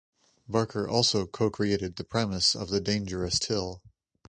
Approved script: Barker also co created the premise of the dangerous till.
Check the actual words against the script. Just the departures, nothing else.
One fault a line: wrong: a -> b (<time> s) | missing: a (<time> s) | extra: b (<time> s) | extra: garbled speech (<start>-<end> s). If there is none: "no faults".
no faults